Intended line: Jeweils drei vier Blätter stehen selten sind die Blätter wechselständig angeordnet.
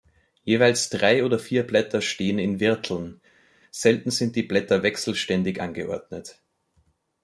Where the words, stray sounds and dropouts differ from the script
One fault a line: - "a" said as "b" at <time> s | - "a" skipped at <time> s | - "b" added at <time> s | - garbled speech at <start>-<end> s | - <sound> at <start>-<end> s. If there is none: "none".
- "oder" added at 1.2 s
- "in Wirteln" added at 2.4 s